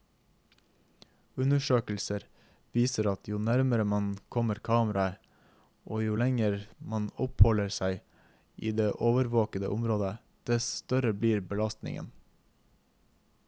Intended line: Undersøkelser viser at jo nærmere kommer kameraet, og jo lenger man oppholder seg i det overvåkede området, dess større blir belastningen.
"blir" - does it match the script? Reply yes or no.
yes